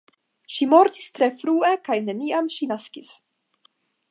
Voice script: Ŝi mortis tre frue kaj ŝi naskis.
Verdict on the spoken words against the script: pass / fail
fail